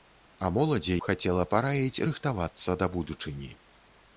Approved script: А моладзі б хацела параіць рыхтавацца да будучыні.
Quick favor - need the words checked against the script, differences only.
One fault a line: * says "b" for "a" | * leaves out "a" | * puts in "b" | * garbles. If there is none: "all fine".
all fine